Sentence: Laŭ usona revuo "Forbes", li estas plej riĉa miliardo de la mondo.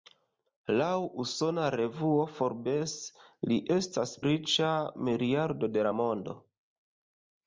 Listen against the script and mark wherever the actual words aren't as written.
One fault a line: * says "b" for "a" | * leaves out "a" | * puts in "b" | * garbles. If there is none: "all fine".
* leaves out "plej"